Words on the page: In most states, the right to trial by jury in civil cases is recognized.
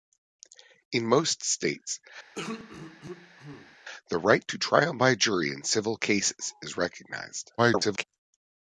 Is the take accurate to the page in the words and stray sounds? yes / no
no